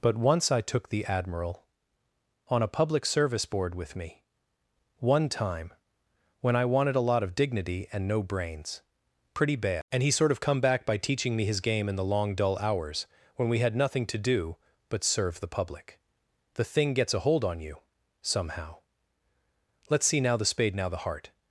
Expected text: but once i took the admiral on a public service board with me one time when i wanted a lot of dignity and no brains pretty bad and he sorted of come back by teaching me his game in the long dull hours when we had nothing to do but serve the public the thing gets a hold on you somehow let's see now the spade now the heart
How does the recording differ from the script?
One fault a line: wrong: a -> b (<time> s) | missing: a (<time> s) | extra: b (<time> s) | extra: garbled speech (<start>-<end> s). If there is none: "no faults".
wrong: sorted -> sort (10.1 s)